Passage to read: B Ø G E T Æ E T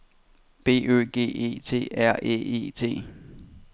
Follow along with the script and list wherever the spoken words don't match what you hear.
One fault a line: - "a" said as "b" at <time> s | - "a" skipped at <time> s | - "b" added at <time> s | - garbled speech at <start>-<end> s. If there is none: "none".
- "R" added at 1.9 s